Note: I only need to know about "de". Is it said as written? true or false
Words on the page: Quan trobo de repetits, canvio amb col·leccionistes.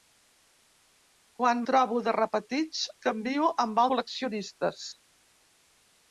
true